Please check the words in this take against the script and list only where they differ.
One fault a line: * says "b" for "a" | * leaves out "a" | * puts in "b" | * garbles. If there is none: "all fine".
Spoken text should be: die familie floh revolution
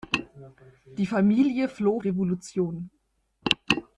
all fine